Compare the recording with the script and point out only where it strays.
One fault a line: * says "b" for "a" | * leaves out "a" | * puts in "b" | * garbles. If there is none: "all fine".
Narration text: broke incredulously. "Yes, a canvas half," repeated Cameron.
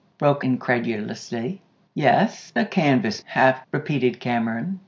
all fine